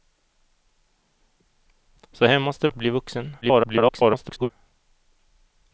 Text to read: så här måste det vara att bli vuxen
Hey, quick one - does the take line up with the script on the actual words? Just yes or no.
no